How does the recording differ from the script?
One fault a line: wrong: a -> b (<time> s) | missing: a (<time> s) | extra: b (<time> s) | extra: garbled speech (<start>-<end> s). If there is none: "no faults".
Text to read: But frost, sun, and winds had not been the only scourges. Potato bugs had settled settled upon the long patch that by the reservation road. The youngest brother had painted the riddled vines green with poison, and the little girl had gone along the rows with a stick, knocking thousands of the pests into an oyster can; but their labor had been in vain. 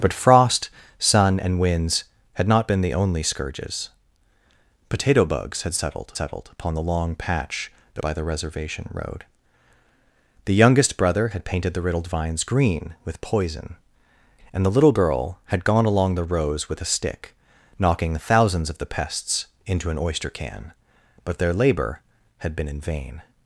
no faults